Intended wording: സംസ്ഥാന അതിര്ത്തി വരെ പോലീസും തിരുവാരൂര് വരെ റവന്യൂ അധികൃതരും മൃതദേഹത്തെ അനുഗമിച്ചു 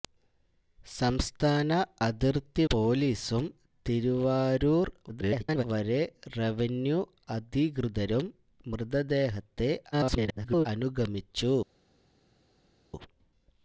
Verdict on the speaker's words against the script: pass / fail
fail